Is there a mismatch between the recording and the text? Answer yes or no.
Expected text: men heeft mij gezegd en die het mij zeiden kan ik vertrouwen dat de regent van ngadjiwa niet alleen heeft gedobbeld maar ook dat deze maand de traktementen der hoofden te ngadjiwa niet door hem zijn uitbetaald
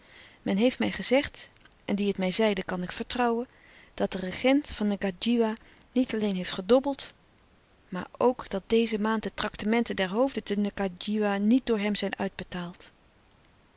no